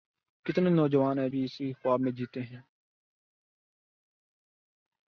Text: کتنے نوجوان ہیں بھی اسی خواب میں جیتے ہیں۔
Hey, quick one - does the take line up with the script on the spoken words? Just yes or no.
yes